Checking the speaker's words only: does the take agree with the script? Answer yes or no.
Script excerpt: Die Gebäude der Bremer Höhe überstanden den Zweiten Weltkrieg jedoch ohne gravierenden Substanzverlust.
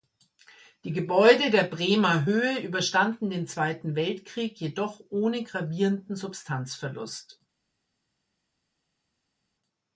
yes